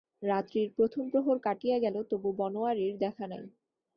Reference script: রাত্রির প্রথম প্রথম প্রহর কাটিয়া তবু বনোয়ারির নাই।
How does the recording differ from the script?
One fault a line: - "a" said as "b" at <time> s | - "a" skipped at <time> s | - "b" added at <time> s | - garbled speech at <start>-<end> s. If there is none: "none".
- "প্রথম" skipped at 1.0 s
- "গেল" added at 1.8 s
- "দেখা" added at 3.0 s